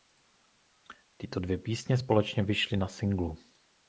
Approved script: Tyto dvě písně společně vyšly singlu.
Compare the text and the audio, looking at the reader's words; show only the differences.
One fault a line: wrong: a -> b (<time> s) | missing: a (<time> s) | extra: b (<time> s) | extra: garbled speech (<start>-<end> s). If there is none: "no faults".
extra: na (2.7 s)